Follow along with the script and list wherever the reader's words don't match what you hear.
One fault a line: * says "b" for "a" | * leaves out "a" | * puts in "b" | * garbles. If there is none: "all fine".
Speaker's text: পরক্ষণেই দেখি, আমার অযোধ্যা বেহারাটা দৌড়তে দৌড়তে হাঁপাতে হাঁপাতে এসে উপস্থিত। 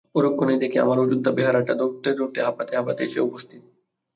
all fine